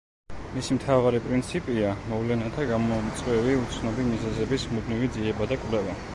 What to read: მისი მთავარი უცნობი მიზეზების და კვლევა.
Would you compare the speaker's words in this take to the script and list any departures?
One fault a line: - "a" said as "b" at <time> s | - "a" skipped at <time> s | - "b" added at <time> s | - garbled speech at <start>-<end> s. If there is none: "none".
- "პრინციპია მოვლენათა გამომწვევი" added at 1.2 s
- "მუდმივი ძიება" added at 4.8 s